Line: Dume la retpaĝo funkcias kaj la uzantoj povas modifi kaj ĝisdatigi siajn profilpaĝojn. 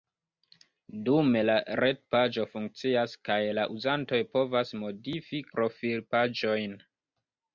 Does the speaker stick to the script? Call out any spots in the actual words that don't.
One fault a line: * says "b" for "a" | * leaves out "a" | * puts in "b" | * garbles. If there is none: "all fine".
* leaves out "kaj ĝisdatigi siajn"